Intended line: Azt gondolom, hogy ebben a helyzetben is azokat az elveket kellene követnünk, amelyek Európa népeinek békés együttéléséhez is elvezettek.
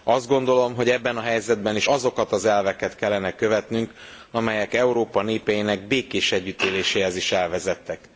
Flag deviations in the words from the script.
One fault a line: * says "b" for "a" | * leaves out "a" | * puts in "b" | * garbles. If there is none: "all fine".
all fine